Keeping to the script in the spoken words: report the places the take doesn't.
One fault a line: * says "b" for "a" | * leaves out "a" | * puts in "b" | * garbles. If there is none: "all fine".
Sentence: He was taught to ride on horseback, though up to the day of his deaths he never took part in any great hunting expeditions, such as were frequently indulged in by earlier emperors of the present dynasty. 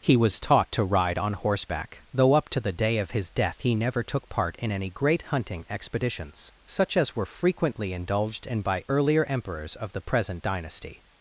* says "death" for "deaths"